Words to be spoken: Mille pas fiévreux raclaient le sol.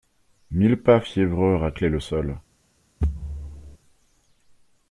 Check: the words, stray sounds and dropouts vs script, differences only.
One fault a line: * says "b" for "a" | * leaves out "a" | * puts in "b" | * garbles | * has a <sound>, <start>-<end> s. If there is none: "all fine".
* has a thud, 3.0-3.8 s